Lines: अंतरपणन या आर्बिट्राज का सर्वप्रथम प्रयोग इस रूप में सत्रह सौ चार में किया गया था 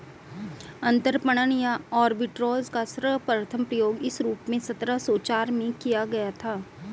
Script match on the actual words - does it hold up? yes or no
yes